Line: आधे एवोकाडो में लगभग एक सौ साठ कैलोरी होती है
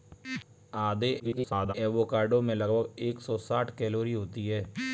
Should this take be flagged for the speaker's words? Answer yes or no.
yes